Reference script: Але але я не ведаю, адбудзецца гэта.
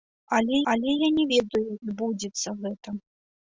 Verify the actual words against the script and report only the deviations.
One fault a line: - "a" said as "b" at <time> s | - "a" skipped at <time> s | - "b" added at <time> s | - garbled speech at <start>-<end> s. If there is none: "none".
none